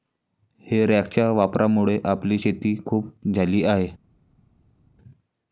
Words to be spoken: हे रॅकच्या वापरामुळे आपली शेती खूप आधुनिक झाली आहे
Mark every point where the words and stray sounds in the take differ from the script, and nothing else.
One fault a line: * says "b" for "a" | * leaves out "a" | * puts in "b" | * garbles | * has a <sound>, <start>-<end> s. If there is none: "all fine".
* leaves out "आधुनिक"